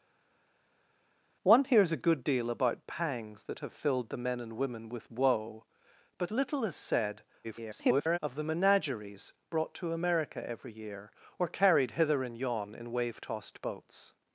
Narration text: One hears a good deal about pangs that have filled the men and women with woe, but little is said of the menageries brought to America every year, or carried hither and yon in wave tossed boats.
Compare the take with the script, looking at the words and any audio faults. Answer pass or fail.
fail